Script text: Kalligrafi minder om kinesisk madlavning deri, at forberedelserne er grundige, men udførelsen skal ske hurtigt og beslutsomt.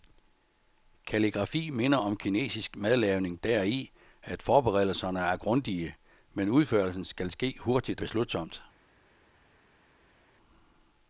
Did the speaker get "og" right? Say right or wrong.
wrong